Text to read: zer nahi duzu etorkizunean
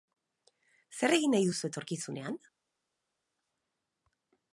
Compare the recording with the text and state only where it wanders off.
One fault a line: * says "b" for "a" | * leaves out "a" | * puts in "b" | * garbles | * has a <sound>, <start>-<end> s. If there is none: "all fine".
* puts in "egin"